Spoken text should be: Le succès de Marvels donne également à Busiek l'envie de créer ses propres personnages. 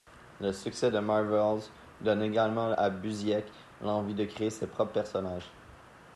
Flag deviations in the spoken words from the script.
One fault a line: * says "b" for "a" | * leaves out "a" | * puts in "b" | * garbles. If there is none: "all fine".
all fine